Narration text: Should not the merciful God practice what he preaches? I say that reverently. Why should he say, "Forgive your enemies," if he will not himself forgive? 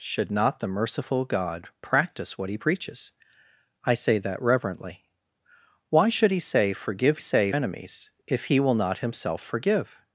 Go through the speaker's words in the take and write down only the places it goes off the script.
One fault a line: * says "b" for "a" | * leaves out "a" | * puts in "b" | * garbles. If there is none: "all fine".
* says "say" for "your"